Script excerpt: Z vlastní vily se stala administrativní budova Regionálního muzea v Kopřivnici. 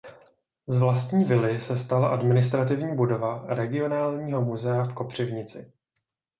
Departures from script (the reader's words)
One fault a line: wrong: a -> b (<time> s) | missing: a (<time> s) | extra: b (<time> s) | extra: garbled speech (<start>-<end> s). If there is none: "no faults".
no faults